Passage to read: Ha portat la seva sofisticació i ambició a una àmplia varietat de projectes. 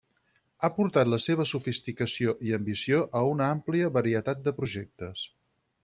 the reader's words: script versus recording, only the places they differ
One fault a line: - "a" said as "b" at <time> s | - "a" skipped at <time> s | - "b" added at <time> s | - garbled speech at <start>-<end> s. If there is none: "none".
none